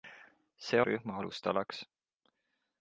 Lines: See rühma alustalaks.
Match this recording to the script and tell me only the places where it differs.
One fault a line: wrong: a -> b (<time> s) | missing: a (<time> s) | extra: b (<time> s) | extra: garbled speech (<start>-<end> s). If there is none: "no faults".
no faults